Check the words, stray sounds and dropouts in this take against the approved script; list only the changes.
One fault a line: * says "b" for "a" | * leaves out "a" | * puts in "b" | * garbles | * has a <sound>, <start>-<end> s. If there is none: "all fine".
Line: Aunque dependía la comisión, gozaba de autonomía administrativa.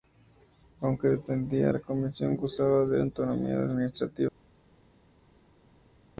all fine